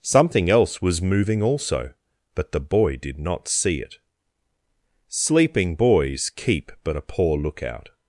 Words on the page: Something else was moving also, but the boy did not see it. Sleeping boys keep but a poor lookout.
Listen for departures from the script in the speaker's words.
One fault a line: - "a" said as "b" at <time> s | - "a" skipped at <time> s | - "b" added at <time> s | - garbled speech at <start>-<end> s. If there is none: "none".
none